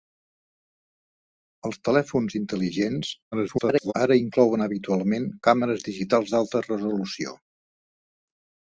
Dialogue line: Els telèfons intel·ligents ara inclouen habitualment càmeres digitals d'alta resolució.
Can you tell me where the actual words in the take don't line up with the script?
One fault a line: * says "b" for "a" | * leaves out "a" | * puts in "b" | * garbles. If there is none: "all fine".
* garbles